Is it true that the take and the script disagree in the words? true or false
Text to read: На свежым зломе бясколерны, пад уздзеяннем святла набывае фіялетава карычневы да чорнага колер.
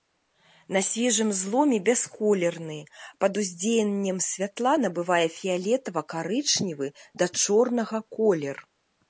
false